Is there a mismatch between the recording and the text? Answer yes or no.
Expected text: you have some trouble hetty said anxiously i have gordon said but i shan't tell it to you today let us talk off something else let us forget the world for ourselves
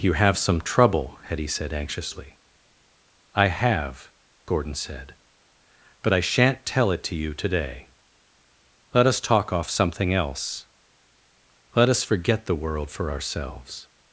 no